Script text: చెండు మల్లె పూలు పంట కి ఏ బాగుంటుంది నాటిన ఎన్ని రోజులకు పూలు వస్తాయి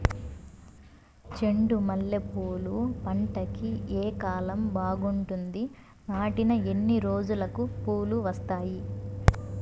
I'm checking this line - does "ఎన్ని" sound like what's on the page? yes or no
yes